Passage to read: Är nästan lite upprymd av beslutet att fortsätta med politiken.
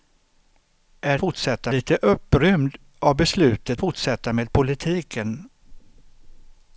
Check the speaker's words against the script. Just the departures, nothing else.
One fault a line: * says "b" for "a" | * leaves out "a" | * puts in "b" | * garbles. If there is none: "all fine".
* says "fortsätta" for "nästan"
* leaves out "att"